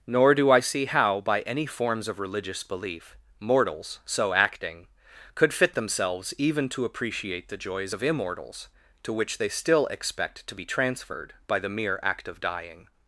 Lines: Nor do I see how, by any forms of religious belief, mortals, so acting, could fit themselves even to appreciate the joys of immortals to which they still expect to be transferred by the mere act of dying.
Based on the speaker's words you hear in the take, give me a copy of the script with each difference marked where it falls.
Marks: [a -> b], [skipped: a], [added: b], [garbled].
Nor do I see how, by any forms of religious belief, mortals, so acting, could fit themselves even to appreciate the joys of immortals to which they still expect to be transferred by the mere act of dying.